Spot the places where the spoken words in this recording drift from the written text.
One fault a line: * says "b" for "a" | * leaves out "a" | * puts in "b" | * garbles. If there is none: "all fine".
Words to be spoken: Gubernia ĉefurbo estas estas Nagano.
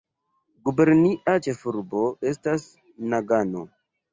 * leaves out "estas"